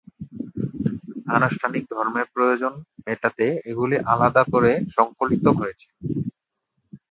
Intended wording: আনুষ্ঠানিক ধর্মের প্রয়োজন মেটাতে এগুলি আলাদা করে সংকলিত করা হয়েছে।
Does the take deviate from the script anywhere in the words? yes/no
yes